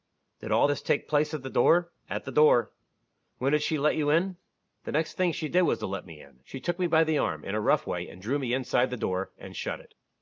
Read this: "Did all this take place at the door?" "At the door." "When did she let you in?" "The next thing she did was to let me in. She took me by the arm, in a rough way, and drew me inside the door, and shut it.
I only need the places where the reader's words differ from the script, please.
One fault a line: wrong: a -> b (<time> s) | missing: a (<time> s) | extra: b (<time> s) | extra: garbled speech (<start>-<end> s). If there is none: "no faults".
no faults